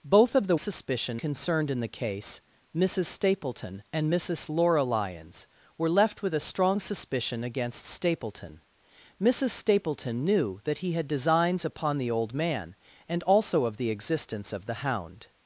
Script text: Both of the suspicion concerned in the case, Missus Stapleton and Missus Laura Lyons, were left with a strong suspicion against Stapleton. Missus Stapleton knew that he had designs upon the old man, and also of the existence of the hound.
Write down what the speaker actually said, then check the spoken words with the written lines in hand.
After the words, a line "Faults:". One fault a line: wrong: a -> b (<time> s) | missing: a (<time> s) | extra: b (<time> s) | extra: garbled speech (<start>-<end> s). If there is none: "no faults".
Both of the suspicion concerned in the case, Missus Stapleton and Missus Laura Lyons, were left with a strong suspicion against Stapleton. Missus Stapleton knew that he had designs upon the old man, and also of the existence of the hound.
Faults:
no faults